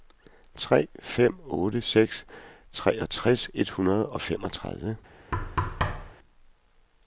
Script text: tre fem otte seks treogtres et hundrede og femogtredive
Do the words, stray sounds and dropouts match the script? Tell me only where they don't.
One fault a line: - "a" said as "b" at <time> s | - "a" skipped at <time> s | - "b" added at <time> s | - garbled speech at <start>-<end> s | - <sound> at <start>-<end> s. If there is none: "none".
- thud at 5.3-6.1 s